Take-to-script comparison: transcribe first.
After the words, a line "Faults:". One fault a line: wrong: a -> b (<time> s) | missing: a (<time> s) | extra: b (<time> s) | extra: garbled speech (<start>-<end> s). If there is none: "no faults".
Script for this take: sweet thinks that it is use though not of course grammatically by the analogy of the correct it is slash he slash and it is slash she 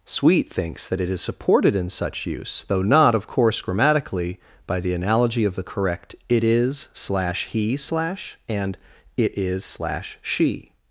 sweet thinks that it is supported in such use though not of course grammatically by the analogy of the correct it is slash he slash and it is slash she
Faults:
extra: supported in such (1.2 s)